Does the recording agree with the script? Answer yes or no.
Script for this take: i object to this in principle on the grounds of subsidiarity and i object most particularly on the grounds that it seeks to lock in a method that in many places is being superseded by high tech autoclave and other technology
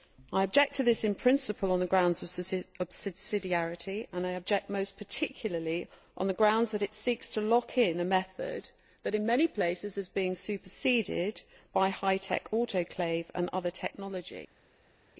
yes